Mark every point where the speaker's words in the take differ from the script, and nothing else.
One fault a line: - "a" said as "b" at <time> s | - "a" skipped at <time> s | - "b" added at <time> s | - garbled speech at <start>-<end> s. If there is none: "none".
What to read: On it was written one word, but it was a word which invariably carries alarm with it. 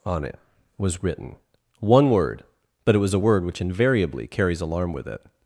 none